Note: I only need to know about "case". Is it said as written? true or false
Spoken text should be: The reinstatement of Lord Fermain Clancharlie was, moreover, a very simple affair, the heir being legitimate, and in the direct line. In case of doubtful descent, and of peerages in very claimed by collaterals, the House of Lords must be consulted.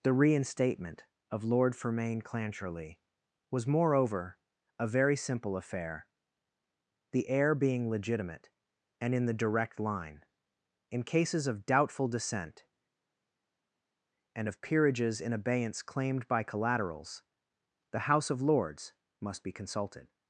false